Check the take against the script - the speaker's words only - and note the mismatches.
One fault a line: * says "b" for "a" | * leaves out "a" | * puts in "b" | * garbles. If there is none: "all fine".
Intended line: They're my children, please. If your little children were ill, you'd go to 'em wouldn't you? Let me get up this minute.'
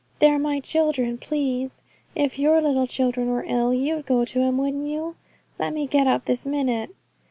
all fine